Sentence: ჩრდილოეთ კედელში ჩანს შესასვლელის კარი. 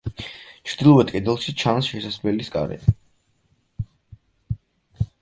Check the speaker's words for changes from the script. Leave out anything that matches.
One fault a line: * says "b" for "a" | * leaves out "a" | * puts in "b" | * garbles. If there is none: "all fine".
all fine